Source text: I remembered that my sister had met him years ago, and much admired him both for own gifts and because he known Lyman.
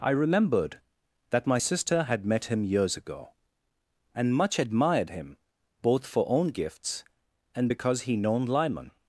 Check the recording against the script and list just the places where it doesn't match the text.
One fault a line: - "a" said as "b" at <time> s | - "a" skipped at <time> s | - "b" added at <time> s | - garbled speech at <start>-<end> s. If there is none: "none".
none